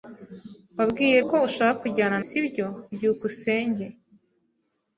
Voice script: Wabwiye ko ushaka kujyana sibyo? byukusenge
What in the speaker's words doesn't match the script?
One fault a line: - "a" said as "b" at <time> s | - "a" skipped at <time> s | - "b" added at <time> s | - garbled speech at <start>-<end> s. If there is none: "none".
none